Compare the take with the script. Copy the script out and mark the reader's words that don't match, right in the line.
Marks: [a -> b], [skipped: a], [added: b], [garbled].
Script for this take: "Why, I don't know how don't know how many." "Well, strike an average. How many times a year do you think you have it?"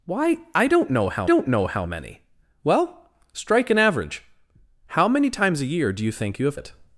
"Why, I don't know how don't know how many." "Well, strike an average. How many times a year do you think you have it?"